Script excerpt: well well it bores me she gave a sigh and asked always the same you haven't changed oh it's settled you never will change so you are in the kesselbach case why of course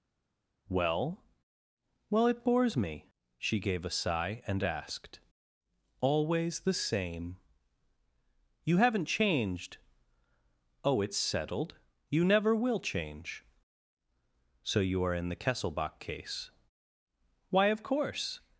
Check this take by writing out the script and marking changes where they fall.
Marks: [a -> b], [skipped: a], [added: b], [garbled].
well well it bores me she gave a sigh and asked always the same you haven't changed oh it's settled you never will change so you are in the kesselbach case why of course